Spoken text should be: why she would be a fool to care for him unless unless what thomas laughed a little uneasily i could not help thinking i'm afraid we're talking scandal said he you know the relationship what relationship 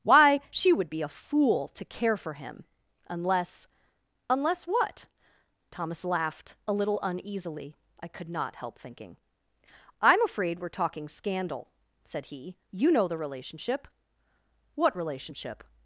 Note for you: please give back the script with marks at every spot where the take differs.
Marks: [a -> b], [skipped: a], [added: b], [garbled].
why she would be a fool to care for him unless unless what thomas laughed a little uneasily i could not help thinking i'm afraid we're talking scandal said he you know the relationship what relationship